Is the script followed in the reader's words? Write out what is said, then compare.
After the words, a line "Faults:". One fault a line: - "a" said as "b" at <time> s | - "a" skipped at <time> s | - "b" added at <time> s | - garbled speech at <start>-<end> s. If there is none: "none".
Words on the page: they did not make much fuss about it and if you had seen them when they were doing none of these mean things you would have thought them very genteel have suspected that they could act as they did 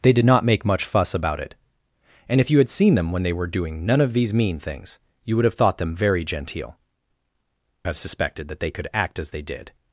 they did not make much fuss about it and if you had seen them when they were doing none of these mean things you would have thought them very genteel have suspected that they could act as they did
Faults:
none